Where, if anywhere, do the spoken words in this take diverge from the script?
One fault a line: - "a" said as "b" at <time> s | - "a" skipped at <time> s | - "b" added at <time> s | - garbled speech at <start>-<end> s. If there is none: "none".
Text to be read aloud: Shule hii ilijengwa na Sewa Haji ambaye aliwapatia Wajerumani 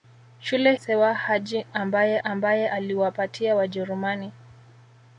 - "hii ilijengwa na" skipped at 0.7 s
- "ambaye" added at 2.2 s